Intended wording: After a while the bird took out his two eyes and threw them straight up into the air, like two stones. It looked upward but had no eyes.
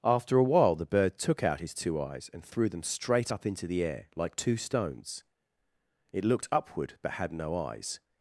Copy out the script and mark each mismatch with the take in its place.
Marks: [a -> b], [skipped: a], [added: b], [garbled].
After a while the bird took out his two eyes and threw them straight up into the air, like two stones. It looked upward but had no eyes.